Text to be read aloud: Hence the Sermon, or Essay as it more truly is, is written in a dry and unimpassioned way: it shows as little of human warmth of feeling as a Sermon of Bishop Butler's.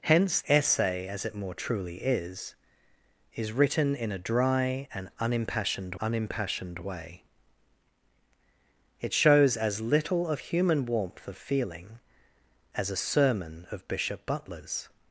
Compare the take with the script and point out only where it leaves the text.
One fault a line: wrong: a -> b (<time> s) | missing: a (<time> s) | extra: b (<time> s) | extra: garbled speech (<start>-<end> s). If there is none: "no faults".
missing: the Sermon or (0.4 s)
extra: unimpassioned (6.0 s)